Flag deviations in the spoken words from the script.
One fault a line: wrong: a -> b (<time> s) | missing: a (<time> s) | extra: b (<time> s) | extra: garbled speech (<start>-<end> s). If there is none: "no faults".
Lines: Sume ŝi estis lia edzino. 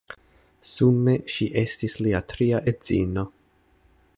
extra: tria (2.3 s)